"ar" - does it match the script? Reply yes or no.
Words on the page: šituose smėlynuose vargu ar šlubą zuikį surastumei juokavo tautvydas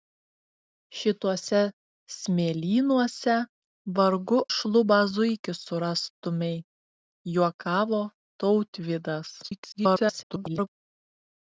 no